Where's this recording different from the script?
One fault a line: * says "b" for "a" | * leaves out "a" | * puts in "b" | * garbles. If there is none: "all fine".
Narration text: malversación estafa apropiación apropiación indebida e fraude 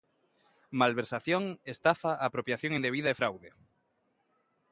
* leaves out "apropiación"